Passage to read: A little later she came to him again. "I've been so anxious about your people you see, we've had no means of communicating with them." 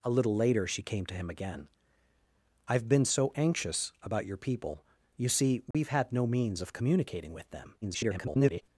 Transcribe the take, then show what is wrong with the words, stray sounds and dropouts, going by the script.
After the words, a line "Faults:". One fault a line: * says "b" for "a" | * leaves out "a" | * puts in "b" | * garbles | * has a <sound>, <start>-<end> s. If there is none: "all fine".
A little later she came to him again. "I've been so anxious about your people you see, we've had no means of communicating with them." [garbled]
Faults:
* has a dropout, 5.7-5.7 s
* garbles